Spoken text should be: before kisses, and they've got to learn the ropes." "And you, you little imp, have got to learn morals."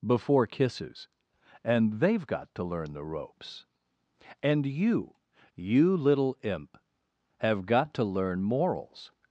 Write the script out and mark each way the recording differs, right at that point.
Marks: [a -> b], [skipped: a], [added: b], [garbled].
before kisses, and they've got to learn the ropes." "And you, you little imp, have got to learn morals."